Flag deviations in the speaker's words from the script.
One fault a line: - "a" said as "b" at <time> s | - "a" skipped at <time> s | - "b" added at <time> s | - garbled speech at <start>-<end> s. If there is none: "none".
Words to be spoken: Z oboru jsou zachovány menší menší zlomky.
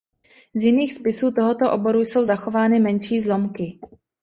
- "jiných spisů tohoto" added at 0.6 s
- "menší" skipped at 3.2 s